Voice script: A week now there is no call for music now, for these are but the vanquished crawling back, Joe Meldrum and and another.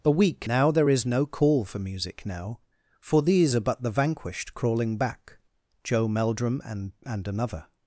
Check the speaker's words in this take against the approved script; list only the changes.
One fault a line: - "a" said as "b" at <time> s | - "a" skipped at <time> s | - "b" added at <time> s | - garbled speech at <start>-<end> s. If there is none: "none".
none